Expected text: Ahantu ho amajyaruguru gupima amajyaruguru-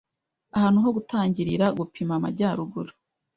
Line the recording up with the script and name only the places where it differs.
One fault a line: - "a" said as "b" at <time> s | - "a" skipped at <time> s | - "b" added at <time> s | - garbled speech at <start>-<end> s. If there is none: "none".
- "amajyaruguru" said as "gutangirira" at 1.0 s